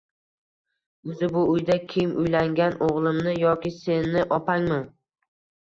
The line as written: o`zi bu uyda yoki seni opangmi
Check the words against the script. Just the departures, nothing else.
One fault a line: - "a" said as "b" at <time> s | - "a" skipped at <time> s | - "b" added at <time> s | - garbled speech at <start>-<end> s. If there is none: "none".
- "kim uylangan o`g`limmi" added at 1.9 s